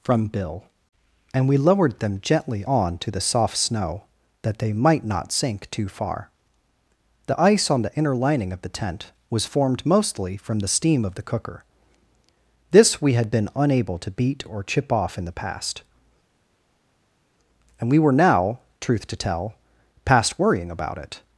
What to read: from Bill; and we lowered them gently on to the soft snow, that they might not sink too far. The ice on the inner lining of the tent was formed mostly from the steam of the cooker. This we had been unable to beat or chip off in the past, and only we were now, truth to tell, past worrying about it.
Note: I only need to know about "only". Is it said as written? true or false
false